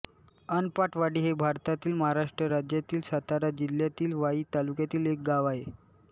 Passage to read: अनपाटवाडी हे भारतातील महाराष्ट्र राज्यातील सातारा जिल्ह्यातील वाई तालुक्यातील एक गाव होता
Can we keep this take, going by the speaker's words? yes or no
no